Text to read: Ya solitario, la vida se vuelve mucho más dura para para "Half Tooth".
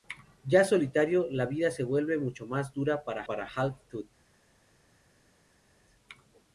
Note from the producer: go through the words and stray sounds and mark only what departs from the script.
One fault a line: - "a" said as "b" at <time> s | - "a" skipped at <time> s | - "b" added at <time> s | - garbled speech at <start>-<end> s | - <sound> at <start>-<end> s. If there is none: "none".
none